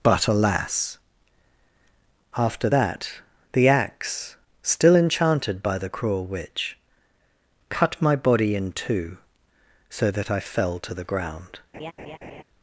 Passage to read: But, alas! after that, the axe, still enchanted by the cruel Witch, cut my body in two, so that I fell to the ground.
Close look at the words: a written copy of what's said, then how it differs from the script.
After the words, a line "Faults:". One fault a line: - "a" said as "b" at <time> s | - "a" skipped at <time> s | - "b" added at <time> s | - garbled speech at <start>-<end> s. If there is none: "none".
But, alas! after that, the axe, still enchanted by the cruel Witch, cut my body in two, so that I fell to the ground.
Faults:
none